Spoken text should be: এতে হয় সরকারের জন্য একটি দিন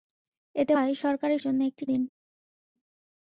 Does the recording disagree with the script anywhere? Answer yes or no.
no